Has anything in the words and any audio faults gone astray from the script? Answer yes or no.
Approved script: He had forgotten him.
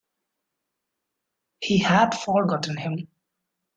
no